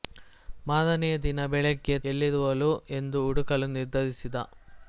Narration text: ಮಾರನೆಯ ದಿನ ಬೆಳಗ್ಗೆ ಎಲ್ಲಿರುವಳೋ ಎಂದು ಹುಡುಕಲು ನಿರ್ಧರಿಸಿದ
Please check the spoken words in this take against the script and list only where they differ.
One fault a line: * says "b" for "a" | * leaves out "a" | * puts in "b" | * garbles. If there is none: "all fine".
all fine